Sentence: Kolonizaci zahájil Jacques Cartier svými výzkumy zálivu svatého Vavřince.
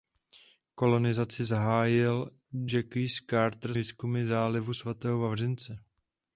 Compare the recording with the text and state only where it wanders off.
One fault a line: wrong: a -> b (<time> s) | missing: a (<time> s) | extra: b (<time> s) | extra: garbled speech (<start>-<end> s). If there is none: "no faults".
missing: svými (3.8 s)